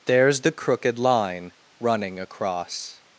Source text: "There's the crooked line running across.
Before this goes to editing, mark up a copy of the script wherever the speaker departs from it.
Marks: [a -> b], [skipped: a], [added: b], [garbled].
"There's the crooked line running across.